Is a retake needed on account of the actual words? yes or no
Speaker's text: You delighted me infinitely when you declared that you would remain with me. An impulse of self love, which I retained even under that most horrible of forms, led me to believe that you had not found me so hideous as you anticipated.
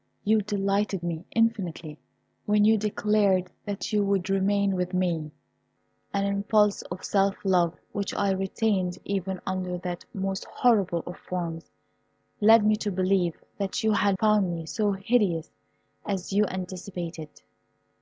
yes